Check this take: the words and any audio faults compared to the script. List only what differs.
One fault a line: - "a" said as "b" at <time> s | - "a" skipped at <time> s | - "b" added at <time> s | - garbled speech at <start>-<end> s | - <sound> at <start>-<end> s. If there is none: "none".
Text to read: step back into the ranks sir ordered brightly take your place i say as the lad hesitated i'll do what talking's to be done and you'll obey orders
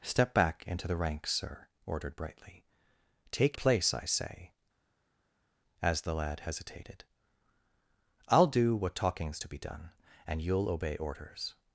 - "your" skipped at 3.6 s